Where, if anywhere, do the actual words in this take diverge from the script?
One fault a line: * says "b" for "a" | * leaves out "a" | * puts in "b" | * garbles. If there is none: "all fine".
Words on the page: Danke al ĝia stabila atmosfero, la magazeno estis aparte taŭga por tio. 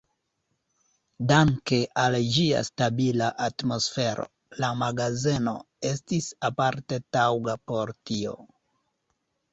all fine